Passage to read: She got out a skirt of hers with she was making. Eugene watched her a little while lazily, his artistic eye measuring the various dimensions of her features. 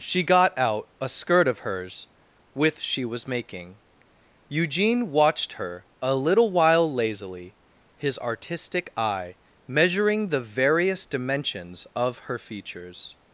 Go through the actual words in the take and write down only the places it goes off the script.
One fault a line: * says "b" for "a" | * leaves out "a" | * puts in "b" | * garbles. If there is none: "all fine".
all fine